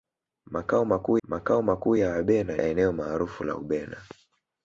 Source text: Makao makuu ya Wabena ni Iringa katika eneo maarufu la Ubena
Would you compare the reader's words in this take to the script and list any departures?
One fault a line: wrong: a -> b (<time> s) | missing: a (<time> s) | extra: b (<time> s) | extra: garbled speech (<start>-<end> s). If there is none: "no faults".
extra: makao makuu (1.2 s)
missing: ni Iringa katika (2.6 s)